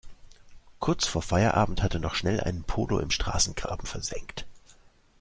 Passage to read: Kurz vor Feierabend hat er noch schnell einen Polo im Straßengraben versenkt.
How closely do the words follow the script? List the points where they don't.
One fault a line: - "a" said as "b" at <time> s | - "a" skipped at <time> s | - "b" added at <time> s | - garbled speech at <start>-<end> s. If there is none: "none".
none